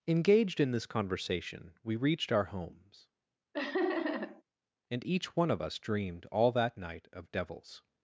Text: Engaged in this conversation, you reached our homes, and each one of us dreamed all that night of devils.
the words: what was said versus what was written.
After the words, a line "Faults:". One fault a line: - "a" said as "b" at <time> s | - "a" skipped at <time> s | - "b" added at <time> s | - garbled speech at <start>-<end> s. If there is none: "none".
Engaged in this conversation, we reached our homes, and each one of us dreamed all that night of devils.
Faults:
- "you" said as "we" at 1.8 s